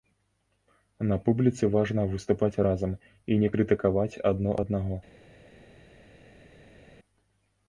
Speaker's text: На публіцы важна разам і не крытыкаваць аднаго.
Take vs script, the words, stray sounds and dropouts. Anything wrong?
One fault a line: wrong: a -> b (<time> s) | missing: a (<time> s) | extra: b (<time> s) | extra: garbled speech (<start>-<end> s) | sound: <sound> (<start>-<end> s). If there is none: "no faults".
extra: выступаць (2.1 s)
extra: адно (4.3 s)